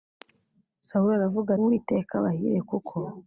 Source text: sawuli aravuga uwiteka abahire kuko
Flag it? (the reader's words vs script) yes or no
no